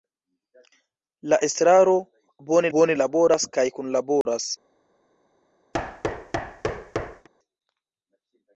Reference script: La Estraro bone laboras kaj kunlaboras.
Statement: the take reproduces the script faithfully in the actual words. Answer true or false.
false